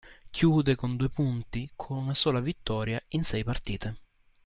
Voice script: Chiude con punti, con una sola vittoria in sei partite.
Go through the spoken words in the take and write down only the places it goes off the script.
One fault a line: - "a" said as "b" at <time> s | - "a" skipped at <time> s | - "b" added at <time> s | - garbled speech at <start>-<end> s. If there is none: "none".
- "due" added at 1.0 s